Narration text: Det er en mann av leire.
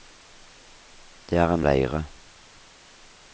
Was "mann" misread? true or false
true